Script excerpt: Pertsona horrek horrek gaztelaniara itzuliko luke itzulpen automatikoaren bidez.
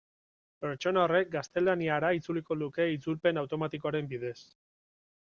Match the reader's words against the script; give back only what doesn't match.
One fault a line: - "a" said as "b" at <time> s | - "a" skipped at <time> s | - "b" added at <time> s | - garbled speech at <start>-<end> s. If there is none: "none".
- "horrek" skipped at 1.3 s